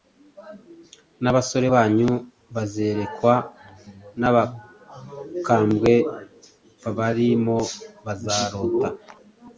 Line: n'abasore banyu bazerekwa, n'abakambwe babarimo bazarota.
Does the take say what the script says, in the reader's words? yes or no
yes